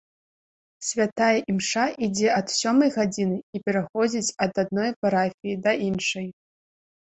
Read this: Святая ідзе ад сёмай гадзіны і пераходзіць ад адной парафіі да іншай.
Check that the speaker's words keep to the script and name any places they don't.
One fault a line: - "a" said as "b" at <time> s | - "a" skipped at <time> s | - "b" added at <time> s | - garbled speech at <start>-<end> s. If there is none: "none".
- "імша" added at 1.5 s